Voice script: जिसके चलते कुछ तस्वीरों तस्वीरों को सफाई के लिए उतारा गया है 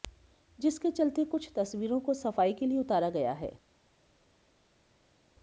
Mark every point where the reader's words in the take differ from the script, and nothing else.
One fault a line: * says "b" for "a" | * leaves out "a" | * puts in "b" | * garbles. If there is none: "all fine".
* leaves out "तस्वीरों"